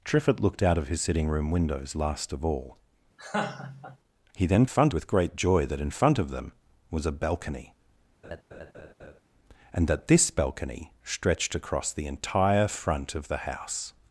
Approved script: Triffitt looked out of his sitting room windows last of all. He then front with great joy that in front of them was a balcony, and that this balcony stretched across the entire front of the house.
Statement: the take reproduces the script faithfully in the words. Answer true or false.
true